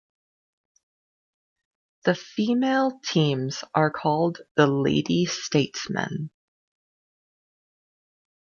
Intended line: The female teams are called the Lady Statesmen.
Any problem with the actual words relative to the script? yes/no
no